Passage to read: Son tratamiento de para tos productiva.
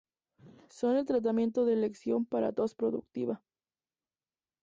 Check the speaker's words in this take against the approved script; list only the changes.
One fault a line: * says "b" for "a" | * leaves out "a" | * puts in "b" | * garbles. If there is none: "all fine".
* puts in "el"
* puts in "elección"